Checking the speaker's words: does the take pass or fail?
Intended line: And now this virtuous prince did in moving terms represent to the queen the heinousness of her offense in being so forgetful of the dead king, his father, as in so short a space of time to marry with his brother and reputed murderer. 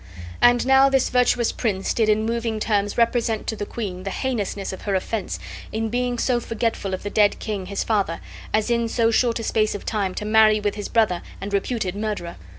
pass